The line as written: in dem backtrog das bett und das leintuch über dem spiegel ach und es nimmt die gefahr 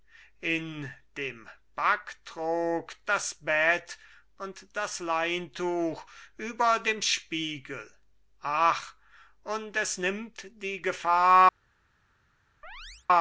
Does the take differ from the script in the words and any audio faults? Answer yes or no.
yes